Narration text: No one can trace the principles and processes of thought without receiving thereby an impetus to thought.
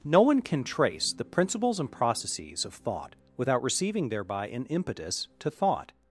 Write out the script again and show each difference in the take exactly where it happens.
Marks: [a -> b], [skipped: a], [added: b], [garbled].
No one can trace the principles and processes of thought without receiving thereby an impetus to thought.